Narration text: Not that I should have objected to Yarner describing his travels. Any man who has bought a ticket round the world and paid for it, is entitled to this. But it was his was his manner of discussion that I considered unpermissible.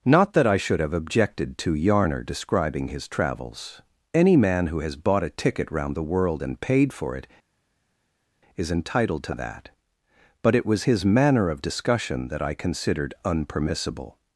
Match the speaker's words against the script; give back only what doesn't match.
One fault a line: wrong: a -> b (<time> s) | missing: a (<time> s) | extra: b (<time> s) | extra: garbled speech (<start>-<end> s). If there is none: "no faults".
wrong: this -> that (9.3 s)
missing: was his (11.0 s)